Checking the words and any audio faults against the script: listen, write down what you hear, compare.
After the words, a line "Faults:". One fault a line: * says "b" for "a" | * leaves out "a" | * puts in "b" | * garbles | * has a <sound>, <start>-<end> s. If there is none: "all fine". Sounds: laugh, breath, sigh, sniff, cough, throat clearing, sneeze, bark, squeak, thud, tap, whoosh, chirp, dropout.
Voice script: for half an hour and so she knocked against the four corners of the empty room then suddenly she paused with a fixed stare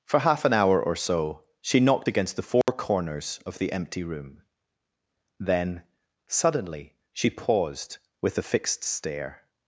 for half an hour or so she knocked against the four corners of the empty room then suddenly she paused with a fixed stare
Faults:
* says "or" for "and"
* has a dropout, 2.6-2.7 s